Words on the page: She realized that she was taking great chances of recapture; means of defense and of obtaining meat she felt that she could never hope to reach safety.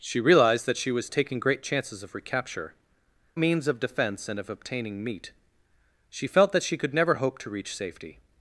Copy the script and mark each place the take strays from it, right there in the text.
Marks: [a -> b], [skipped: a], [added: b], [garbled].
She realized that she was taking great chances of recapture; means of defense and of obtaining meat she felt that she could never hope to reach safety.